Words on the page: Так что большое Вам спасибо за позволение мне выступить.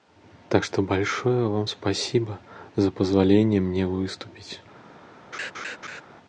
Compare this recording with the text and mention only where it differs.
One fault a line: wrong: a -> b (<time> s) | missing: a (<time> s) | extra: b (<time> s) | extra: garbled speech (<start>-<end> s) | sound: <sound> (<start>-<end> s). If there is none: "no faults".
sound: laugh (5.3-6.0 s)